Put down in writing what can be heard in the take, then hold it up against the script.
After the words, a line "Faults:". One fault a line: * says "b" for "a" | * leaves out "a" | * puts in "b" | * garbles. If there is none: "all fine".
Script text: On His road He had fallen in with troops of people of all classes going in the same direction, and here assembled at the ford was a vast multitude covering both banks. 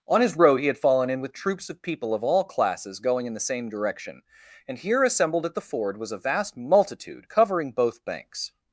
On His road He had fallen in with troops of people of all classes going in the same direction, and here assembled at the ford was a vast multitude covering both banks.
Faults:
all fine